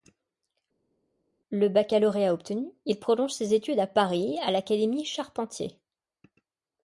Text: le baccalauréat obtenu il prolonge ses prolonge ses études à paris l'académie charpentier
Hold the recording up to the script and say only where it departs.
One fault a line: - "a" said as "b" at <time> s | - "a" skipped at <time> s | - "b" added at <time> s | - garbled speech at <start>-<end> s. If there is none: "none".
- "prolonge ses" skipped at 3.5 s
- "à" added at 4.4 s